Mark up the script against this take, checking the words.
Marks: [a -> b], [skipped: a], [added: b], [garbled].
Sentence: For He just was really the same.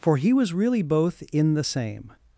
For He [skipped: just] was really [added: both in] the same.